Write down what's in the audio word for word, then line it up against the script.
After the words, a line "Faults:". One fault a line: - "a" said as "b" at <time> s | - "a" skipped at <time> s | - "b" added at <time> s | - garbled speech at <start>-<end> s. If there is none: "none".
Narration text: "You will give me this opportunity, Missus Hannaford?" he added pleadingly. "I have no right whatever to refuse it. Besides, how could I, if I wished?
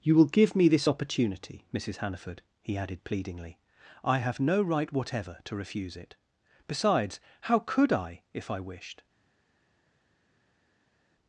"You will give me this opportunity, Missus Hannaford?" he added pleadingly. "I have no right whatever to refuse it. Besides, how could I, if I wished?
Faults:
none